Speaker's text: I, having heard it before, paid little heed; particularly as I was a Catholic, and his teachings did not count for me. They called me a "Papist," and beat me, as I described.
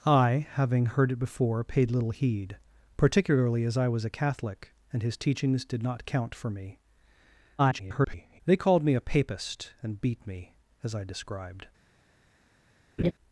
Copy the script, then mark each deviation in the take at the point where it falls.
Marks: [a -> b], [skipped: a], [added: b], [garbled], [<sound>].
I, having heard it before, paid little heed; particularly as I was a Catholic, and his teachings did not count for me. [garbled] They called me a "Papist," and beat me, as I described. [laugh]